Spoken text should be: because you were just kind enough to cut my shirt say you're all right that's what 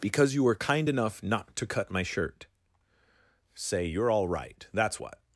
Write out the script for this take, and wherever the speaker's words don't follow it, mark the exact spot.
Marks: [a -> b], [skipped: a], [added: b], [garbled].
because you were [skipped: just] kind enough [added: not] to cut my shirt say you're all right that's what